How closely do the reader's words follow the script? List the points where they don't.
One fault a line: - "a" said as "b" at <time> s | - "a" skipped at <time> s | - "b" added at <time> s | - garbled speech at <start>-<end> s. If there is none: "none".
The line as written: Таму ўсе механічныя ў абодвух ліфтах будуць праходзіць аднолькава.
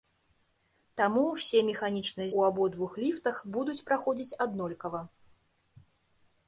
none